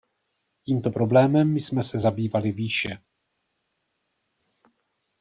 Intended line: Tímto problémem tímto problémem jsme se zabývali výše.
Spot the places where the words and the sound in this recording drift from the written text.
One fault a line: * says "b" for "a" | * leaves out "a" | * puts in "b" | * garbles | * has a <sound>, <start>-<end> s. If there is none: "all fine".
* leaves out "tímto problémem"